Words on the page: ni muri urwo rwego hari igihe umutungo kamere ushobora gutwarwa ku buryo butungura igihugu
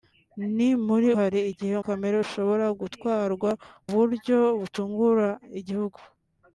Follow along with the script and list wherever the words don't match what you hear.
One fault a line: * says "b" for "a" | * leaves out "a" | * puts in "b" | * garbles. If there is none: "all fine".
* leaves out "urwo rwego"
* leaves out "umutungo"
* leaves out "ku"